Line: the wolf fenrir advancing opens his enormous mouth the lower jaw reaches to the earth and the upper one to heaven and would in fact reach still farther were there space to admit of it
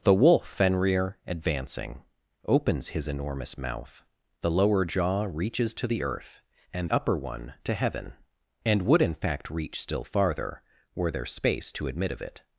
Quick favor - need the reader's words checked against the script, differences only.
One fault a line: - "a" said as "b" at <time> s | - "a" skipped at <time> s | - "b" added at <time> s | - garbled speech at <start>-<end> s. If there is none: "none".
- "the" skipped at 6.9 s